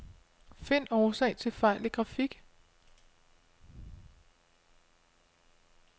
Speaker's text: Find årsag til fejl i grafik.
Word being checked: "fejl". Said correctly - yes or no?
yes